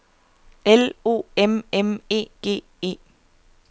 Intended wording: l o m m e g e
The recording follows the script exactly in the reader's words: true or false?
true